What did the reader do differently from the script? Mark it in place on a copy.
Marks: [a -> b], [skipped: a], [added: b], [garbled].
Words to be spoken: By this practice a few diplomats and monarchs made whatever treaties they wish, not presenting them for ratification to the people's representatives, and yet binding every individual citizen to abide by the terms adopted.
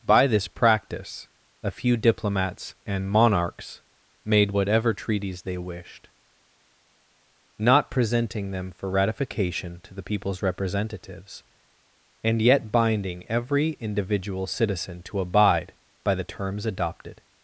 By this practice a few diplomats and monarchs made whatever treaties they [wish, -> wished] not presenting them for ratification to the people's representatives, and yet binding every individual citizen to abide by the terms adopted.